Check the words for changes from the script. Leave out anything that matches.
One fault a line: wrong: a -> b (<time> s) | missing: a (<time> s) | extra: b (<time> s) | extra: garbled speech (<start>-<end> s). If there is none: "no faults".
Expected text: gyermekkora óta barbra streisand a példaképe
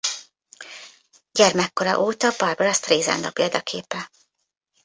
no faults